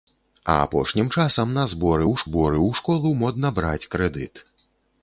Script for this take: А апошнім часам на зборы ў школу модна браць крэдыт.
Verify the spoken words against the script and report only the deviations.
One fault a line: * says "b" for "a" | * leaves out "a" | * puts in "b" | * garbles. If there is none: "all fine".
* puts in "зборы ў"